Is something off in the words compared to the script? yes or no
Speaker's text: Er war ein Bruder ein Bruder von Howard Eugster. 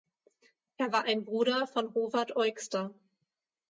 yes